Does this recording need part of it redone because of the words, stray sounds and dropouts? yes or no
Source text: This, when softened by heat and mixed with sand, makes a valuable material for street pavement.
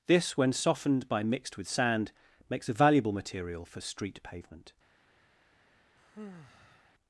yes